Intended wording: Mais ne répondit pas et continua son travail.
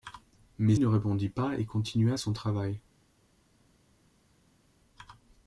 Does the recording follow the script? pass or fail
pass